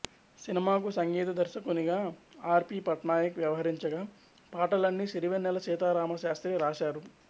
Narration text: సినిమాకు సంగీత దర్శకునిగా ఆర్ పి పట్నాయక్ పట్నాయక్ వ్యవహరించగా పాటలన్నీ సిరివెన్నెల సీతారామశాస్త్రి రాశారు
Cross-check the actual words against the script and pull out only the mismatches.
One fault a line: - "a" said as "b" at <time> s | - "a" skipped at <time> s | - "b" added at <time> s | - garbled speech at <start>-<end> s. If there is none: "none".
- "పట్నాయక్" skipped at 3.4 s